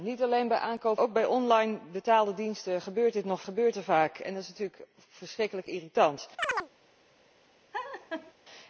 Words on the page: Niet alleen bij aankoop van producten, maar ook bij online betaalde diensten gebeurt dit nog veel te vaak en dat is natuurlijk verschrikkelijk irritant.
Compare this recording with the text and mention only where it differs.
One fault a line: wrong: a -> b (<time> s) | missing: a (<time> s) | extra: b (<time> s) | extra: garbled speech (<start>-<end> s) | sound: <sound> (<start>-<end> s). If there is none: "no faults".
missing: van producten maar (1.0 s)
wrong: veel -> gebeurt (3.4 s)
sound: chirp (6.4-6.7 s)
sound: laugh (7.7-8.3 s)